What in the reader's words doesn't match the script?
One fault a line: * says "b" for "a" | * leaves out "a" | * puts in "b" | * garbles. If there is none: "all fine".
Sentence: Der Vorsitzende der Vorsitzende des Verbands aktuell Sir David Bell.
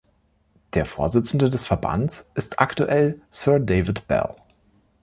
* leaves out "der Vorsitzende"
* puts in "ist"